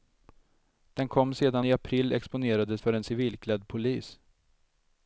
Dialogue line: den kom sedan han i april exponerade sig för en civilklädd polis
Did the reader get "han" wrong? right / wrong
wrong